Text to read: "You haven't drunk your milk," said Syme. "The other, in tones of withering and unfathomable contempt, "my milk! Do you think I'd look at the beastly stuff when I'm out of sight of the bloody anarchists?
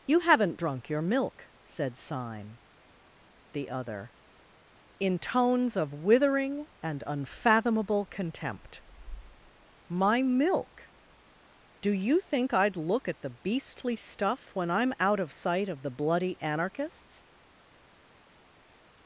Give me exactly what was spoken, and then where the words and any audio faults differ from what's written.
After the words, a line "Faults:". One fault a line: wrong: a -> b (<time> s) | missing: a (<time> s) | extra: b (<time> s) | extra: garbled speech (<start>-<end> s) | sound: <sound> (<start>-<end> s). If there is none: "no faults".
"You haven't drunk your milk," said Syme. "The other, in tones of withering and unfathomable contempt, "my milk! Do you think I'd look at the beastly stuff when I'm out of sight of the bloody anarchists?
Faults:
no faults